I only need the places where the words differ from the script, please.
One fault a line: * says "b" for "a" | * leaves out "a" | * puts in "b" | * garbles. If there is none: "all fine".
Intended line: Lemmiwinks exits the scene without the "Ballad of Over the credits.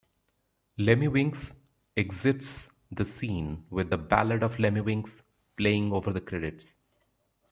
* says "with" for "without"
* puts in "Lemmiwinks playing"